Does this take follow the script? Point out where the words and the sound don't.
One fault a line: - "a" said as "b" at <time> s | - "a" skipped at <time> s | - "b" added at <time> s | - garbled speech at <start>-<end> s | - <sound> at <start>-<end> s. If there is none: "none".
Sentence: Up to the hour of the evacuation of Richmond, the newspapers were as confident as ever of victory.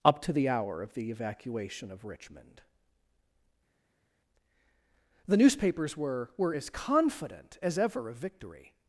- "were" added at 6.4 s